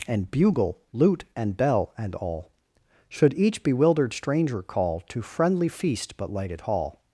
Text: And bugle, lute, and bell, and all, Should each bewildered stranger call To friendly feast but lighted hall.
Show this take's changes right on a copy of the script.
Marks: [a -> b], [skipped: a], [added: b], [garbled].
And bugle, lute, and bell, and all, Should each bewildered stranger call To friendly feast but lighted hall.